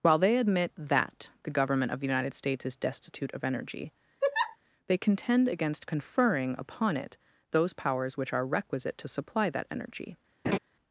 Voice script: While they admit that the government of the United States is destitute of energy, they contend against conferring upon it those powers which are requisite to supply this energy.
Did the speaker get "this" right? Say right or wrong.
wrong